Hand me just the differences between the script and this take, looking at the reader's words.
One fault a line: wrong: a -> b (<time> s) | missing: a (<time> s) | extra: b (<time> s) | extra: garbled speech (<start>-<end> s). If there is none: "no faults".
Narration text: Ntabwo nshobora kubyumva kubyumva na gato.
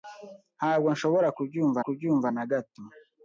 no faults